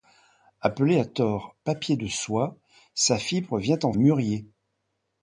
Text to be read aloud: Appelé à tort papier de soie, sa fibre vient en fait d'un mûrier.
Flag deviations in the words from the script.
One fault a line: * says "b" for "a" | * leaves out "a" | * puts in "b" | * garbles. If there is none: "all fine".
* leaves out "fait d'un"